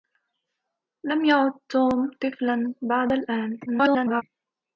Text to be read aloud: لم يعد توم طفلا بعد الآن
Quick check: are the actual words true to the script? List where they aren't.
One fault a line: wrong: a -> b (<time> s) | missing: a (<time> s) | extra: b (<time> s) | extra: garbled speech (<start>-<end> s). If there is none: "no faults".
extra: garbled speech (3.7-4.2 s)